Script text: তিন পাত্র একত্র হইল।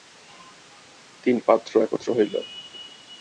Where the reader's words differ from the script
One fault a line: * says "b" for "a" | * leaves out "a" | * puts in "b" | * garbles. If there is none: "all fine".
all fine